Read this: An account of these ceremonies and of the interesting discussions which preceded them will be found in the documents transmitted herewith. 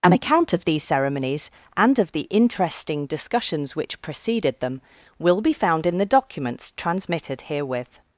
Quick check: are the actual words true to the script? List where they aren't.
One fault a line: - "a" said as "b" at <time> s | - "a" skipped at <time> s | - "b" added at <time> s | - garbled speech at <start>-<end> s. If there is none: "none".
none